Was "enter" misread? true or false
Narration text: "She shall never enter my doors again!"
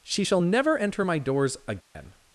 false